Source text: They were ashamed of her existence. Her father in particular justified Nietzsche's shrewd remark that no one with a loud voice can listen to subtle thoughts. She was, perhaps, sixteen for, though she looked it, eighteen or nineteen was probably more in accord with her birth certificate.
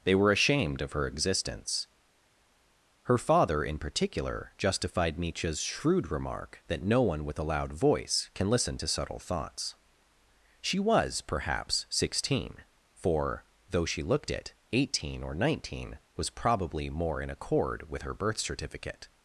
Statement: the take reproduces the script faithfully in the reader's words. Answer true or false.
true